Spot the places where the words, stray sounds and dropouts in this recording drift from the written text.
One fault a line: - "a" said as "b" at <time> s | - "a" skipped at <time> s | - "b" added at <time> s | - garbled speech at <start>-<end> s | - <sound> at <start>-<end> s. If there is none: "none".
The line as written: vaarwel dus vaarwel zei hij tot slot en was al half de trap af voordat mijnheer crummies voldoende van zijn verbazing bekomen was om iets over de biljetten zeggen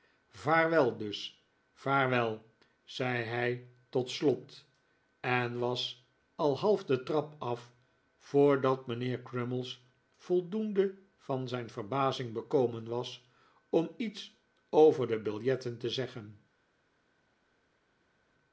- "te" added at 15.8 s